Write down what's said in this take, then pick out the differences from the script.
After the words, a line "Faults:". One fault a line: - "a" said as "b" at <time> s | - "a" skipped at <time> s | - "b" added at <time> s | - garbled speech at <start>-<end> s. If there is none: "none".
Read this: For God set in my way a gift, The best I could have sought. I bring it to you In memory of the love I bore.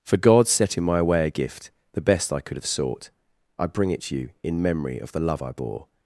For God set in my way a gift, The best I could have sought. I bring it to you In memory of the love I bore.
Faults:
none